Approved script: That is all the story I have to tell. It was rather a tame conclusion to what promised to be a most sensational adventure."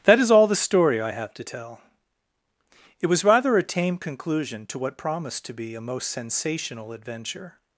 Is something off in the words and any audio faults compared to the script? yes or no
no